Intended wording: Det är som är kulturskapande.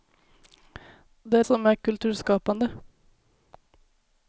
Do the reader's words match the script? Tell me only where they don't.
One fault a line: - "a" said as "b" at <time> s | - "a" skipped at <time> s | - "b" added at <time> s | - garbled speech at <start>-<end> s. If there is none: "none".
none